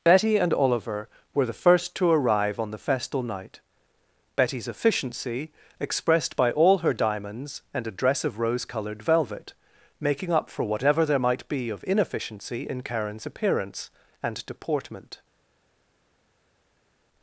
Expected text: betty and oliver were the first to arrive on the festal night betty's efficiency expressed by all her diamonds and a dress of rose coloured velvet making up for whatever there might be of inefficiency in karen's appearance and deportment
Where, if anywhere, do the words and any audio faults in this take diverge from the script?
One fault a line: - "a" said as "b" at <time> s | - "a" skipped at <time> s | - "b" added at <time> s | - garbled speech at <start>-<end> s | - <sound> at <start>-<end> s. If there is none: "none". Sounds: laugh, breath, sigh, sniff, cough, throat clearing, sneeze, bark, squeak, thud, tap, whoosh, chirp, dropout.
none